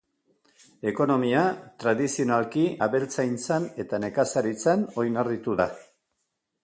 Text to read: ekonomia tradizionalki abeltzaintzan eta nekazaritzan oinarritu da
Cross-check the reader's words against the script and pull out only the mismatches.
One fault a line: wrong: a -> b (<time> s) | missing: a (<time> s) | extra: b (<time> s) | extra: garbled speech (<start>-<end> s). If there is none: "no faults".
no faults